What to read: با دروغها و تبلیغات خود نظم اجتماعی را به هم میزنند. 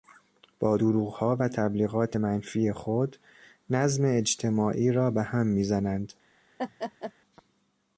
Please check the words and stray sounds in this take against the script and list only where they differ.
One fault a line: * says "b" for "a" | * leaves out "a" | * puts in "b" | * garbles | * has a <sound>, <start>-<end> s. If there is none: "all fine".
* puts in "منفی"
* has a laugh, 6.6-7.1 s